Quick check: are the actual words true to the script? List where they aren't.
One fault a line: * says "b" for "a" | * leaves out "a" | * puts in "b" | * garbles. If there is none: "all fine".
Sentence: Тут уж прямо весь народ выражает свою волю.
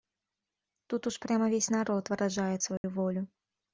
all fine